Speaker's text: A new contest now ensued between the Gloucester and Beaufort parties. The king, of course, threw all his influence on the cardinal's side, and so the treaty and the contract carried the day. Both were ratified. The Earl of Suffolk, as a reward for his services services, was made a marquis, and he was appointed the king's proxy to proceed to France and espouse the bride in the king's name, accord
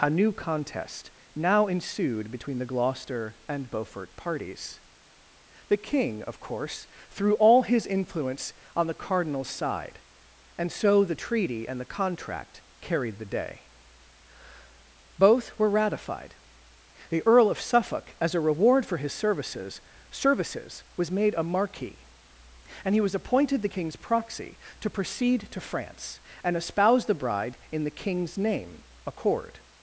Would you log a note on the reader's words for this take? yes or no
no